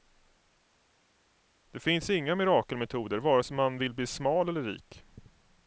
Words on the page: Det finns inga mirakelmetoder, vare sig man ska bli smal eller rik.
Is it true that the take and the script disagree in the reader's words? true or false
true